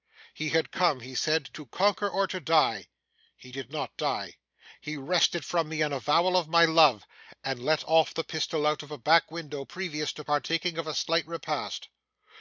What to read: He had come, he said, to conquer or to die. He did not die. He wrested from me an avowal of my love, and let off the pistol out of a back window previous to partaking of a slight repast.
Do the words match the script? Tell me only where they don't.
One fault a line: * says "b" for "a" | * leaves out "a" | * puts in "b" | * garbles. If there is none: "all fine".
all fine